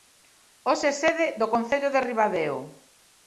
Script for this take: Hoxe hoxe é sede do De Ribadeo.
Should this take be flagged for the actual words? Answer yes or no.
yes